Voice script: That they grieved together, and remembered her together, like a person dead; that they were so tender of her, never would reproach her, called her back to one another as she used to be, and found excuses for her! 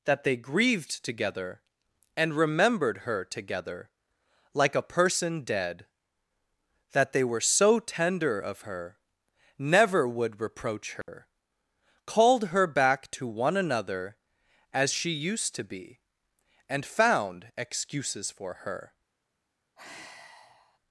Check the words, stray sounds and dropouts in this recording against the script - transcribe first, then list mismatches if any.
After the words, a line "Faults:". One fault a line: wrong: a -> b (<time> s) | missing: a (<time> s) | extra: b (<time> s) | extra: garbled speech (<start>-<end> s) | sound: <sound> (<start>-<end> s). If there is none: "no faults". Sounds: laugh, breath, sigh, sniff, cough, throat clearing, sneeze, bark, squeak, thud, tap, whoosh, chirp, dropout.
That they grieved together, and remembered her together, like a person dead; that they were so tender of her, never would reproach her, called her back to one another as she used to be, and found excuses for her!
Faults:
sound: dropout (11.0-11.1 s)
sound: sigh (19.8-20.8 s)